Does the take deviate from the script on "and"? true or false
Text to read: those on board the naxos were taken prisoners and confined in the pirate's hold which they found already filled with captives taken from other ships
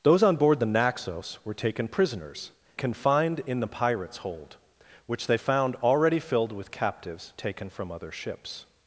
true